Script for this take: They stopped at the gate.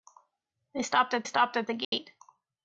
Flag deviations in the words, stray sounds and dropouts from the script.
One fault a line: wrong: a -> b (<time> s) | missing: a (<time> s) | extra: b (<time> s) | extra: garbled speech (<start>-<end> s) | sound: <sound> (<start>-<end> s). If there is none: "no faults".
extra: stopped at (1.2 s)
sound: dropout (1.8-1.9 s)